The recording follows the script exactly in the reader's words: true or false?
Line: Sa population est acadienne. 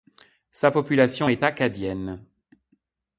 true